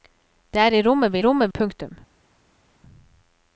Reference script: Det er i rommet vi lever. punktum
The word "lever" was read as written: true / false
false